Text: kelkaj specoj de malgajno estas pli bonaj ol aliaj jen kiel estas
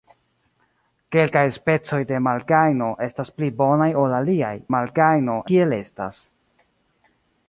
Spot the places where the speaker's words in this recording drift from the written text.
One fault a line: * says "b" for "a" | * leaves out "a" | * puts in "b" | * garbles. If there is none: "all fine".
* says "malgajno" for "jen"